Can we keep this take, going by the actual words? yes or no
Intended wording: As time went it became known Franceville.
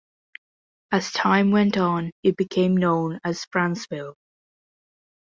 no